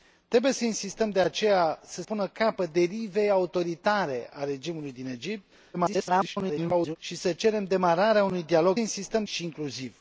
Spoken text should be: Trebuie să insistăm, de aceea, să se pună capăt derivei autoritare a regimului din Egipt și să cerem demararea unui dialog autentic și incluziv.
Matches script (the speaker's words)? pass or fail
fail